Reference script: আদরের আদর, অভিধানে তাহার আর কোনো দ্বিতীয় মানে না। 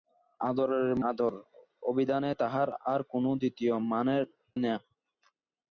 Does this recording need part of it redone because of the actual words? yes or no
no